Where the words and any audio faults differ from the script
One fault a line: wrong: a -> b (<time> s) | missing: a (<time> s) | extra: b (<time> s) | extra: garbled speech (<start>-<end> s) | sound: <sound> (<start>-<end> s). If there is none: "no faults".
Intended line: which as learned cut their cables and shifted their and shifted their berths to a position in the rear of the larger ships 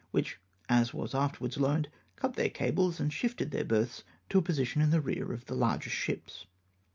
extra: was afterwards (0.9 s)
missing: and shifted their (3.6 s)